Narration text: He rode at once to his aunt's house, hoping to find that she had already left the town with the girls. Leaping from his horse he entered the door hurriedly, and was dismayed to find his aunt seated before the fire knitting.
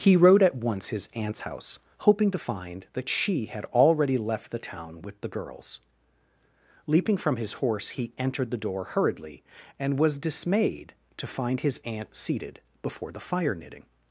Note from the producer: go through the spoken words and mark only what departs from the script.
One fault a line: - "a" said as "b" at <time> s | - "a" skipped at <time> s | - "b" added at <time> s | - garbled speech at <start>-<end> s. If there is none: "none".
- "to" skipped at 0.9 s